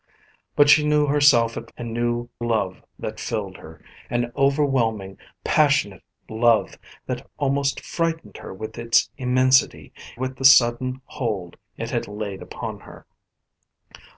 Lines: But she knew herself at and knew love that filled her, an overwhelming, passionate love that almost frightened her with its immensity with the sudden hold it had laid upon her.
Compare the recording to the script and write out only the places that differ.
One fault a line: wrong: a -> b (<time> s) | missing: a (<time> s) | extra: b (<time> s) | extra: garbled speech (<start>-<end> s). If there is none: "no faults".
no faults